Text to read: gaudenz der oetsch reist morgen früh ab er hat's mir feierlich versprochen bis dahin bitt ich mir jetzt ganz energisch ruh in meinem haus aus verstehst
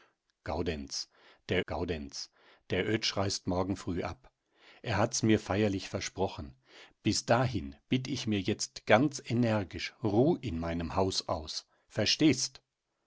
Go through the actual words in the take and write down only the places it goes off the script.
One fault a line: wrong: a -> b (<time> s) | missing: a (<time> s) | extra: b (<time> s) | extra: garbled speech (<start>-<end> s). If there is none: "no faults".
extra: gaudenz der (1.7 s)